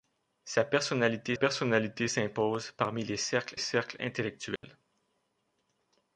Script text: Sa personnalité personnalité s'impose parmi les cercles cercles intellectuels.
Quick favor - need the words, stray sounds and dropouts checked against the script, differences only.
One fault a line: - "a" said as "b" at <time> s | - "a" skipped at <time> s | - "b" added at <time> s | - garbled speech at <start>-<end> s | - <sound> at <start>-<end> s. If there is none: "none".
- dropout at 4.6-4.6 s